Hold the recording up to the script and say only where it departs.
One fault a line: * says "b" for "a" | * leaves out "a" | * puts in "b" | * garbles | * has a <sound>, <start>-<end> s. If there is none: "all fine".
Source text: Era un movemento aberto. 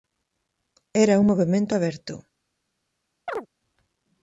* has a chirp, 3.3-3.5 s